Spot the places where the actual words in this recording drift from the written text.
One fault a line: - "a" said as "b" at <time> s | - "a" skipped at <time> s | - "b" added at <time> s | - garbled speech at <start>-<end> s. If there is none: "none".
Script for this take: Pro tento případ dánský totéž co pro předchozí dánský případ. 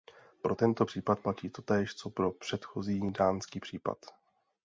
- "dánský" said as "platí" at 1.2 s